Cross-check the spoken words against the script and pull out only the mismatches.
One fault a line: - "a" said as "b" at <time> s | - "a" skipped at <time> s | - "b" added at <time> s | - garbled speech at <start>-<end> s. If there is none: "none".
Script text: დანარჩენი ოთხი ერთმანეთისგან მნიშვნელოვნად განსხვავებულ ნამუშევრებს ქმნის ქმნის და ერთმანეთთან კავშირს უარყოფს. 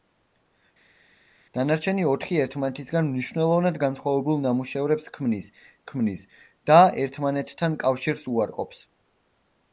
none